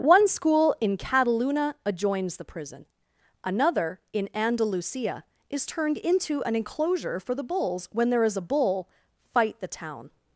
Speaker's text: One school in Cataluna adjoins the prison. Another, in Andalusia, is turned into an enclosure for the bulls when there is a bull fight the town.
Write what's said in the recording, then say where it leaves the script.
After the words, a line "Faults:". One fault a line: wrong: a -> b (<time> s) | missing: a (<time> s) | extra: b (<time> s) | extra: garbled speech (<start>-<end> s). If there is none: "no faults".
One school in Cataluna adjoins the prison. Another, in Andalusia, is turned into an enclosure for the bulls when there is a bull fight the town.
Faults:
no faults